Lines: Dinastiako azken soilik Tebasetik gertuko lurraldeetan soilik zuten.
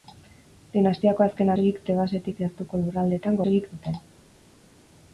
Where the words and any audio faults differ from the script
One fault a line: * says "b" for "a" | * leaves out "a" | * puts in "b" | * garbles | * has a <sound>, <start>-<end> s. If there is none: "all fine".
all fine